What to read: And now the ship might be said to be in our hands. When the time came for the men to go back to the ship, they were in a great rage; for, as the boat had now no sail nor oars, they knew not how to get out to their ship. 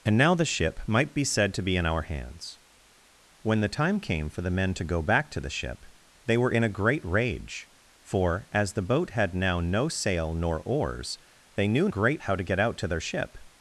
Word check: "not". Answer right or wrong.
wrong